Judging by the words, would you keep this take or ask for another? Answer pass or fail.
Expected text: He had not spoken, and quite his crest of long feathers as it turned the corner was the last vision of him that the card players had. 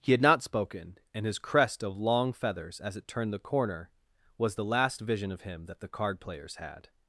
fail